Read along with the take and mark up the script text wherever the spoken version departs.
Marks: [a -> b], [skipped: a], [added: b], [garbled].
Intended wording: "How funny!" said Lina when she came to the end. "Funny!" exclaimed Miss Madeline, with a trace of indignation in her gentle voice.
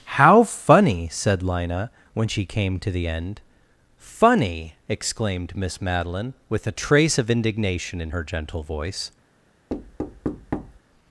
"How funny!" said Lina when she came to the end. "Funny!" exclaimed Miss Madeline, with a trace of indignation in her gentle voice.